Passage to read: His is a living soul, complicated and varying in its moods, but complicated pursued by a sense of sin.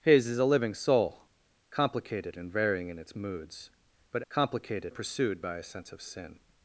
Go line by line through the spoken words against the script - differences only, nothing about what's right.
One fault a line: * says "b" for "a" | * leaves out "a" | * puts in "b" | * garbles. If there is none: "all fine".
all fine